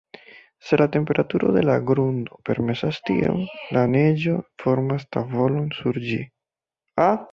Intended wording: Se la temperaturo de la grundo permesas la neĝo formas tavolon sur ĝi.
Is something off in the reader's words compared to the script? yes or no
yes